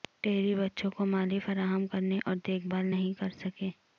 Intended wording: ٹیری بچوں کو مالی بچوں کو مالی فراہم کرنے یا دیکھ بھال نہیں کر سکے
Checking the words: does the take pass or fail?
fail